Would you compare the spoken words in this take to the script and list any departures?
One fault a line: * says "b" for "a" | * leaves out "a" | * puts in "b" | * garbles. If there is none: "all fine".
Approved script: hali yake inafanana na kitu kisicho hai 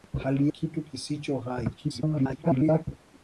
* leaves out "yake inafanana na"
* garbles